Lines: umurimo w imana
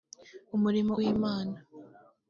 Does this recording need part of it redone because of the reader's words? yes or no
no